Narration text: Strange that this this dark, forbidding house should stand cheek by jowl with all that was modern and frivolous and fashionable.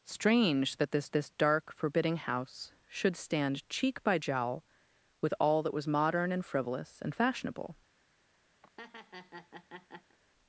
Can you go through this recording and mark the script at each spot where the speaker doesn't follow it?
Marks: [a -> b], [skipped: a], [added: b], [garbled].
Strange that this this dark, forbidding house should stand cheek by jowl with all that was modern and frivolous and fashionable.